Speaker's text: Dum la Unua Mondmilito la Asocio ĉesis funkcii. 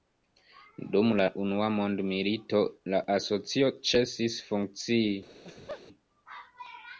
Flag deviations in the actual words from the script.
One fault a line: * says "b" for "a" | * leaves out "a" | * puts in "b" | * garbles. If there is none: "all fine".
all fine